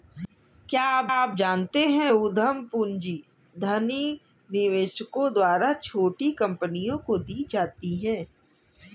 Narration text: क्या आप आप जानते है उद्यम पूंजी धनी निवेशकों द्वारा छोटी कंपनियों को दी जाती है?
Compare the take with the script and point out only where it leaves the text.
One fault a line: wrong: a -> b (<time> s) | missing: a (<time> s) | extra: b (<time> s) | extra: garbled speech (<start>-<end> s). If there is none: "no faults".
no faults